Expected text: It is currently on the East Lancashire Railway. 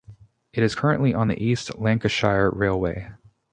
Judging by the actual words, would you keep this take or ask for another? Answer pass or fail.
pass